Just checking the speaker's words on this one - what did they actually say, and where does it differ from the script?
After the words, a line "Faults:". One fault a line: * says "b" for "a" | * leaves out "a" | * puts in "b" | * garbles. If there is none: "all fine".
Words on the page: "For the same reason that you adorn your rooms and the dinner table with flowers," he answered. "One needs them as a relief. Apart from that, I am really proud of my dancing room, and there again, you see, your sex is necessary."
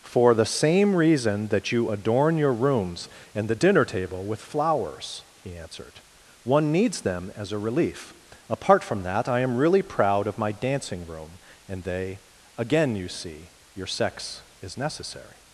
"For the same reason that you adorn your rooms and the dinner table with flowers," he answered. "One needs them as a relief. Apart from that, I am really proud of my dancing room, and they again, you see, your sex is necessary."
Faults:
* says "they" for "there"